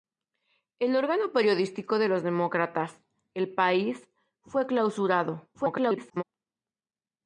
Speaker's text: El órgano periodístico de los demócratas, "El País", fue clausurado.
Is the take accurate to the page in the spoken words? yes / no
no